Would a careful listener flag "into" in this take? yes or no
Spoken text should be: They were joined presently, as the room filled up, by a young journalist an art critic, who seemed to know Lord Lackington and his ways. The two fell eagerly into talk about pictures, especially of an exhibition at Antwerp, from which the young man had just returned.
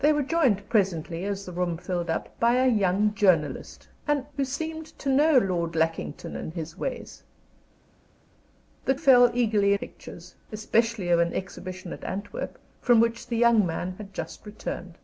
yes